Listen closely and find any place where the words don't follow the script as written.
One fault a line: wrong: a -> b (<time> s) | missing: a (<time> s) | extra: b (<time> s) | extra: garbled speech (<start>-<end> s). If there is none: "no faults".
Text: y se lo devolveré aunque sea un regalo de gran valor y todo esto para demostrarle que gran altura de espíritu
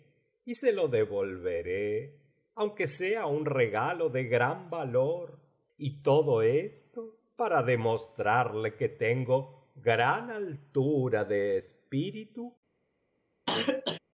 extra: tengo (8.9 s)